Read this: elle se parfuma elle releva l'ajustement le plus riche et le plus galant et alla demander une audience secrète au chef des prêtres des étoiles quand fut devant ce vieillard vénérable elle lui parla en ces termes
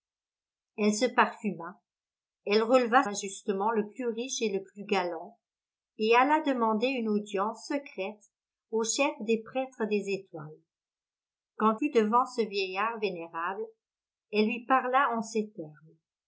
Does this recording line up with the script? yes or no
yes